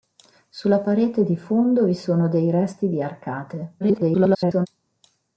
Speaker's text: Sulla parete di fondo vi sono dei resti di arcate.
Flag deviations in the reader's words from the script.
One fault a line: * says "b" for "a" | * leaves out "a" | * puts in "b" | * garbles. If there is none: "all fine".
* garbles